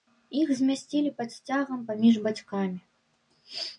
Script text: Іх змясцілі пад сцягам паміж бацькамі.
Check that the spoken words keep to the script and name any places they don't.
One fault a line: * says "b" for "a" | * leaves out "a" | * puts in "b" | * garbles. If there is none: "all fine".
all fine